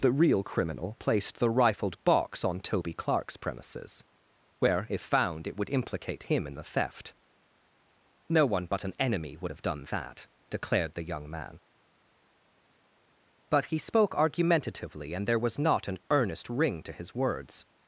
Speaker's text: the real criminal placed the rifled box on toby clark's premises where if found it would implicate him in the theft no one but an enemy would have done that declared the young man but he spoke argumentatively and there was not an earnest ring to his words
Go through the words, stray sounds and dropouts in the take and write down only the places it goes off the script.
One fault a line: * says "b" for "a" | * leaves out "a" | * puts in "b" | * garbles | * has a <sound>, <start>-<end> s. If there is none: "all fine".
all fine